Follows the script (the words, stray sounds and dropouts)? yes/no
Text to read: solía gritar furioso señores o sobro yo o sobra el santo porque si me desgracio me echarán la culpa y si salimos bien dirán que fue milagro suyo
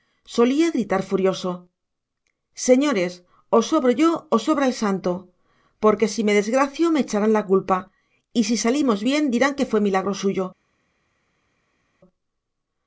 yes